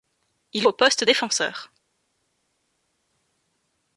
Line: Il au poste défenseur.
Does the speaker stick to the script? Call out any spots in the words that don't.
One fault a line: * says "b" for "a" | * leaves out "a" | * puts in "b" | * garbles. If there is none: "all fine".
all fine